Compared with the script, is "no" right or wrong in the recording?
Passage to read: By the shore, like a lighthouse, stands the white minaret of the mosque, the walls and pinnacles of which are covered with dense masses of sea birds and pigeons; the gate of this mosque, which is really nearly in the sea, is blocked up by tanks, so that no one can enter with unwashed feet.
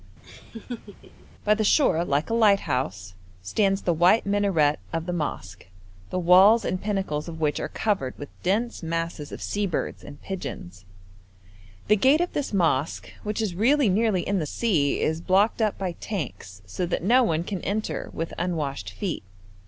right